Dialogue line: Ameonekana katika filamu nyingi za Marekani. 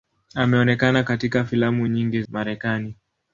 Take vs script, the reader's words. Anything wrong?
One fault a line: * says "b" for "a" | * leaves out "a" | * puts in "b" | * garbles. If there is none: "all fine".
* leaves out "za"